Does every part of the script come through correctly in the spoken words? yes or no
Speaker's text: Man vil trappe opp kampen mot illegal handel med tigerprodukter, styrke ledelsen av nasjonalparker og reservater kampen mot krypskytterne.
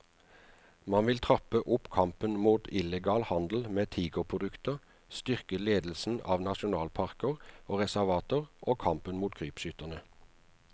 no